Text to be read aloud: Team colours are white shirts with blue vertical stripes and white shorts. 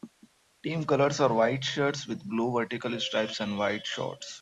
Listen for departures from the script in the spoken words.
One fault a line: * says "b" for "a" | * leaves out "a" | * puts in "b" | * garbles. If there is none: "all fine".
all fine